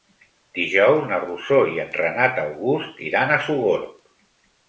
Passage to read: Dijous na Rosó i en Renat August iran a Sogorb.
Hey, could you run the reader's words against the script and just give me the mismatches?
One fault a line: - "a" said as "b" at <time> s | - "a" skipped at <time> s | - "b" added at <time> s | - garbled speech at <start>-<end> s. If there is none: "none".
none